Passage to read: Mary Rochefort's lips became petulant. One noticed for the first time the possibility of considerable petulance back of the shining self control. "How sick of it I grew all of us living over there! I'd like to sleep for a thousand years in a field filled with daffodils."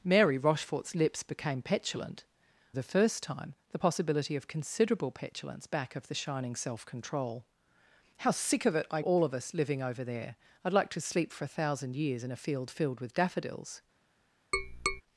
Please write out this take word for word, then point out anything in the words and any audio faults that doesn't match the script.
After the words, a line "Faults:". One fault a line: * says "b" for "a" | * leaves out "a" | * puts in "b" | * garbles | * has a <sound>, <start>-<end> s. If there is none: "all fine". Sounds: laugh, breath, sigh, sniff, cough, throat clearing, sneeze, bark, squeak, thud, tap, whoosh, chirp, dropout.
Mary Rochefort's lips became petulant. The first time the possibility of considerable petulance back of the shining self control. "How sick of it I all of us living over there! I'd like to sleep for a thousand years in a field filled with daffodils."
Faults:
* leaves out "One noticed for"
* leaves out "grew"
* has a tap, 14.5-15.0 s